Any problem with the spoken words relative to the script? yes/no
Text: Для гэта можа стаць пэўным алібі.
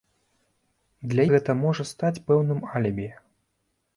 no